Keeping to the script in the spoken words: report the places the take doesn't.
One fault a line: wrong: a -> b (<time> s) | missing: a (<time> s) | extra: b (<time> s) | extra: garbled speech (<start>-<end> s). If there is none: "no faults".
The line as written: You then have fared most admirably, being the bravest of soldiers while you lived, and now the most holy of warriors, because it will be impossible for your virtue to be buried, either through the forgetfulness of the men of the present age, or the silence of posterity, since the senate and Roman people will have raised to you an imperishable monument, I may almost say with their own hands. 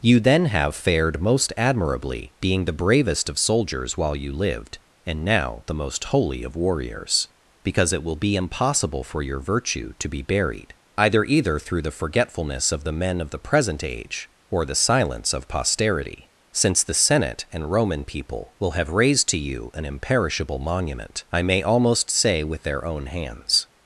extra: either (11.2 s)